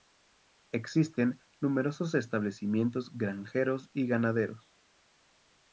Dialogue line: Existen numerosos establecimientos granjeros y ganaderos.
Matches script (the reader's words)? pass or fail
pass